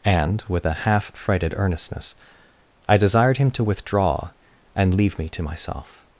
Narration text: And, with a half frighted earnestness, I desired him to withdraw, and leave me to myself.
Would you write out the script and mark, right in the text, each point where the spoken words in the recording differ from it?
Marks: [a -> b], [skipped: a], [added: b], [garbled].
And, with a half frighted earnestness, I desired him to withdraw, and leave me to myself.